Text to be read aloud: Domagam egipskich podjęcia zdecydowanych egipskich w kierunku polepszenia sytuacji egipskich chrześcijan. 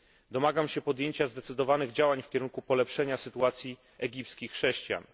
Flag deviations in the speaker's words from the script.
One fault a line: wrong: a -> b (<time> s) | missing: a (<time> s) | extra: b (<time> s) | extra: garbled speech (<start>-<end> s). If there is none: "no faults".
wrong: egipskich -> się (0.7 s)
wrong: egipskich -> działań (1.9 s)